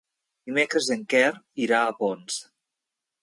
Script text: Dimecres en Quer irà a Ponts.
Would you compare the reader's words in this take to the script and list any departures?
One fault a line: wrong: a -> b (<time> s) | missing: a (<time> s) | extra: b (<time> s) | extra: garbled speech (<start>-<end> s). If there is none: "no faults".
no faults